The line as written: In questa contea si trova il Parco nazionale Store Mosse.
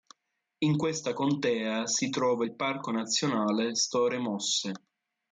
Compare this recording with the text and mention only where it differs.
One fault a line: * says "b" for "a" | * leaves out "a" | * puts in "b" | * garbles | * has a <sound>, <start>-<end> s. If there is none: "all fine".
all fine